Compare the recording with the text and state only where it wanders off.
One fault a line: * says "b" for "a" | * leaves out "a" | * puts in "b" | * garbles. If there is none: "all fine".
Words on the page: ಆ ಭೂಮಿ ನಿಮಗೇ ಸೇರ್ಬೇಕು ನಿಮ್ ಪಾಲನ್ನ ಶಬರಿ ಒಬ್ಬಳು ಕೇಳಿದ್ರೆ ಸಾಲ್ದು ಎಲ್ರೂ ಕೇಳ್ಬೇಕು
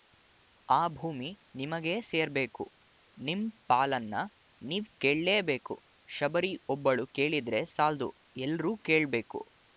* puts in "ನೀವ್ ಕೇಳ್ಲೇಬೇಕು"